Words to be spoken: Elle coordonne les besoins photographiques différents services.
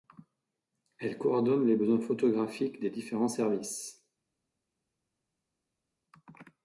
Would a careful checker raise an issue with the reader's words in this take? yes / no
yes